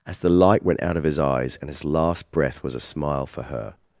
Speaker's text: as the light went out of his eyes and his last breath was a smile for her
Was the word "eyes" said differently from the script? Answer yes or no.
no